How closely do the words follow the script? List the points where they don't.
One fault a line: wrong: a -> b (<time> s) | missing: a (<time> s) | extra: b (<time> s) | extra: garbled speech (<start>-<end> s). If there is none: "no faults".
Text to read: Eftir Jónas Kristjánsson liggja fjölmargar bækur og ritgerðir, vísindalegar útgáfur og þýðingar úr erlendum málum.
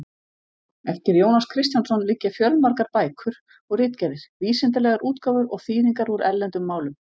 no faults